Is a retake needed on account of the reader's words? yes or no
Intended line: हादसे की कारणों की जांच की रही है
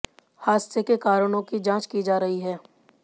yes